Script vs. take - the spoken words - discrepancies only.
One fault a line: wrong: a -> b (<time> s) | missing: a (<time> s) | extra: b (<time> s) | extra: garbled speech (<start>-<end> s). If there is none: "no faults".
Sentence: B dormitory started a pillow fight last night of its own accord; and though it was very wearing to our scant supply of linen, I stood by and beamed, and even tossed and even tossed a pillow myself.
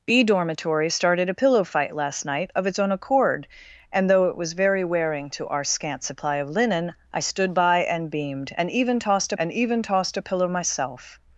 no faults